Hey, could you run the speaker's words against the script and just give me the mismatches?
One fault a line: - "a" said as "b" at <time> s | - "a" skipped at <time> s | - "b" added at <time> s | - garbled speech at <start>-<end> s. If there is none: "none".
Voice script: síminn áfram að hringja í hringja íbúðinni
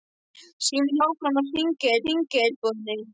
none